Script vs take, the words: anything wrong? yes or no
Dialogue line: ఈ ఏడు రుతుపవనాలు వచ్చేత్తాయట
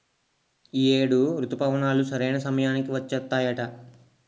yes